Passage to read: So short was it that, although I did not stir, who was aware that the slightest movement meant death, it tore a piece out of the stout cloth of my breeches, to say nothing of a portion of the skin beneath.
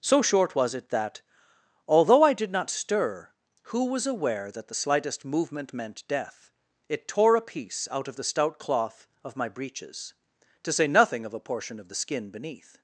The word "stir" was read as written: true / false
true